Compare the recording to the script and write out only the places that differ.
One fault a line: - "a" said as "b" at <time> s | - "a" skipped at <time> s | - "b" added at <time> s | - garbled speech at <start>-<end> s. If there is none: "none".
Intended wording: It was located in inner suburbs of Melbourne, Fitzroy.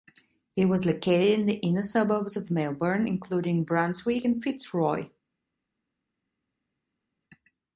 - "the" added at 1.4 s
- "including Brunswick and" added at 3.1 s